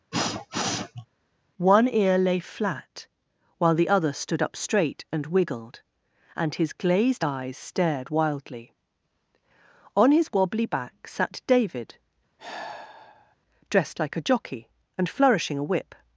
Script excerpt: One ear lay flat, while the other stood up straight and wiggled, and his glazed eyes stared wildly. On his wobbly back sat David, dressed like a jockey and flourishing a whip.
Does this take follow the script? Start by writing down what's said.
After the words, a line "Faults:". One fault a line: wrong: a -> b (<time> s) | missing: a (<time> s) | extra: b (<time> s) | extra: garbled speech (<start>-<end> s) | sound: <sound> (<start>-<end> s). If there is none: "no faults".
One ear lay flat, while the other stood up straight and wiggled, and his glazed eyes stared wildly. On his wobbly back sat David, dressed like a jockey and flourishing a whip.
Faults:
sound: sniff (0.1-1.1 s)
sound: sigh (12.4-13.4 s)